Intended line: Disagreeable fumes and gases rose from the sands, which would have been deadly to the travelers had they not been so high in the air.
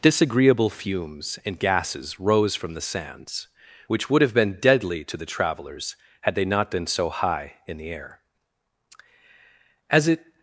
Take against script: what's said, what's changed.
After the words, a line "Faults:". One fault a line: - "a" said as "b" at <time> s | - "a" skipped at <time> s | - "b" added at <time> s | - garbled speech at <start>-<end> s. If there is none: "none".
Disagreeable fumes and gases rose from the sands, which would have been deadly to the travelers had they not been so high in the air. As it
Faults:
- "As it" added at 9.9 s